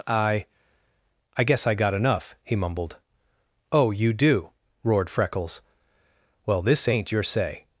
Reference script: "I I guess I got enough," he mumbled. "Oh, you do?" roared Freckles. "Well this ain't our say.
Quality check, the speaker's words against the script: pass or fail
fail